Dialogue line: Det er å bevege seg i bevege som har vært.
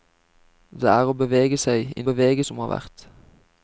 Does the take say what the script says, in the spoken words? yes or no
yes